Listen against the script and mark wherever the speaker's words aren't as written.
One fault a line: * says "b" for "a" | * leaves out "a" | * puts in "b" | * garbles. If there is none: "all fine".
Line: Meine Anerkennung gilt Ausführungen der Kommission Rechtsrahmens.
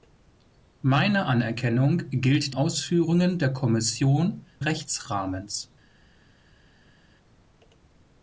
all fine